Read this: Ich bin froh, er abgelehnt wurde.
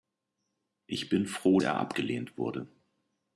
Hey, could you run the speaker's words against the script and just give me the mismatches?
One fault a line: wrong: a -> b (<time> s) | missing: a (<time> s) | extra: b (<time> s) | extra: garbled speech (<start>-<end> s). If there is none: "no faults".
no faults